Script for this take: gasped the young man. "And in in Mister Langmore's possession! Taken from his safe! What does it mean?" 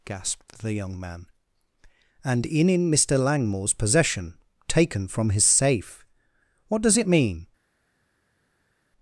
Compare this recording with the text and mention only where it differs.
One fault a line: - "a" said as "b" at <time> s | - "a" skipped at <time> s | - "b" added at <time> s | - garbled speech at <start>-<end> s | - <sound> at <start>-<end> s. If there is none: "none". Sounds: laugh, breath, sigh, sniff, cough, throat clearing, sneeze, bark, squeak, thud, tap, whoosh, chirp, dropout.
none